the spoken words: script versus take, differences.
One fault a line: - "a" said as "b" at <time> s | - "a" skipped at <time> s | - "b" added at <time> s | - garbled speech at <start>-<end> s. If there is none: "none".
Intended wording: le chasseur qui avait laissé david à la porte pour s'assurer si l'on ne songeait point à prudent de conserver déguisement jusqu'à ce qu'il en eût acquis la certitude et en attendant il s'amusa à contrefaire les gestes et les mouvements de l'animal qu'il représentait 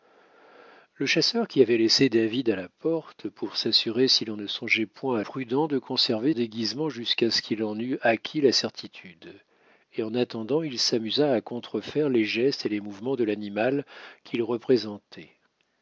none